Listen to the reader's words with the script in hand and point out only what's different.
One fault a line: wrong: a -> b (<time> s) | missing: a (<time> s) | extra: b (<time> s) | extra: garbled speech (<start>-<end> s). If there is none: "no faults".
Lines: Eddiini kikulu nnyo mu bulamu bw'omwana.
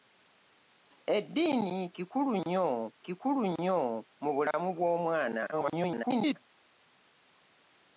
extra: kikulu nnyo (3.0 s)
extra: garbled speech (5.5-6.4 s)